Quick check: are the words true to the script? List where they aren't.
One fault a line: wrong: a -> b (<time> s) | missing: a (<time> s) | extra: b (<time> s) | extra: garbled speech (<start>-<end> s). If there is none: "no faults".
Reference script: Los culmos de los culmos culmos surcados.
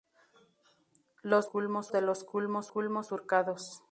no faults